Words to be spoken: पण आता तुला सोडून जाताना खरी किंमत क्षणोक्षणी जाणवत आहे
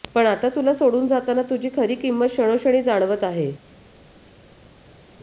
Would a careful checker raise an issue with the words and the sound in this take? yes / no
yes